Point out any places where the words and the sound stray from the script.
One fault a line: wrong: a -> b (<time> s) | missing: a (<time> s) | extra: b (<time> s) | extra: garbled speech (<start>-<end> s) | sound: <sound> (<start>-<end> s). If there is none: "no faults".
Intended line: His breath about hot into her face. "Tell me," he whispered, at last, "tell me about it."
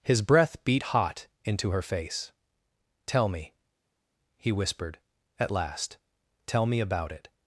wrong: about -> beat (0.7 s)